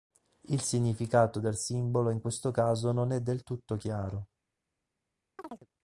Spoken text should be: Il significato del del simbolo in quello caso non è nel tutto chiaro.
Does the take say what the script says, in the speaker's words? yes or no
no